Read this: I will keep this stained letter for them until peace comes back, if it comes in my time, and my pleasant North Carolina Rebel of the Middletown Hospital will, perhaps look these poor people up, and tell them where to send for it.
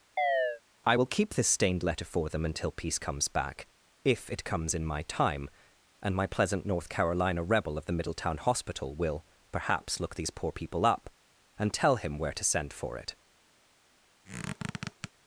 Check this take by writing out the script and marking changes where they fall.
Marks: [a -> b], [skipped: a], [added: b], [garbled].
I will keep this stained letter for them until peace comes back, if it comes in my time, and my pleasant North Carolina Rebel of the Middletown Hospital will, perhaps look these poor people up, and tell [them -> him] where to send for it.